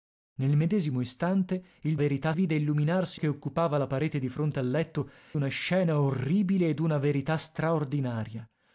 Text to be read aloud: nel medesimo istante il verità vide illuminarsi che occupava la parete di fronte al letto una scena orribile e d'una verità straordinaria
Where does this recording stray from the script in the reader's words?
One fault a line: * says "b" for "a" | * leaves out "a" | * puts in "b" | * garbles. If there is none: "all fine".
all fine